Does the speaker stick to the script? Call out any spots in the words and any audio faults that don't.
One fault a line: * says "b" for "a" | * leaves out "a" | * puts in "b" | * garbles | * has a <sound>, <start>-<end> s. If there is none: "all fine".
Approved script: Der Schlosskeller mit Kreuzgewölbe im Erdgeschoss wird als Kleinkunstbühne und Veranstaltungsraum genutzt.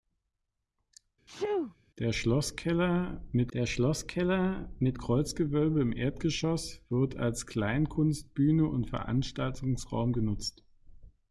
* has a sneeze, 1.3-1.8 s
* puts in "der Schlosskeller mit"